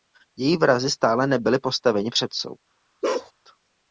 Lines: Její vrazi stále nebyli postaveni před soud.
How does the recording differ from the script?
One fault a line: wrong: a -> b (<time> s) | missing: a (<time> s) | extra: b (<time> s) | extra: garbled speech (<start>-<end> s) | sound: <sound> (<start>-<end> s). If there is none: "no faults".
sound: bark (3.0-3.3 s)